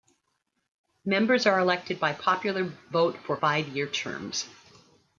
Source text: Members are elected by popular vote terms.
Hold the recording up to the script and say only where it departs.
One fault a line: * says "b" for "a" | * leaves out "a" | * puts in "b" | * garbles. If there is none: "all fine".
* puts in "for five year"